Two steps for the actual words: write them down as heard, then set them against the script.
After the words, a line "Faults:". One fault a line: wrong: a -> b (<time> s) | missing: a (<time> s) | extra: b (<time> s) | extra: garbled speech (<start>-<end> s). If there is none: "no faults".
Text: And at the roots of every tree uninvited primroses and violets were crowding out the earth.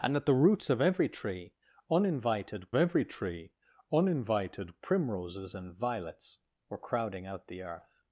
And at the roots of every tree uninvited every tree uninvited primroses and violets were crowding out the earth.
Faults:
extra: every tree uninvited (2.8 s)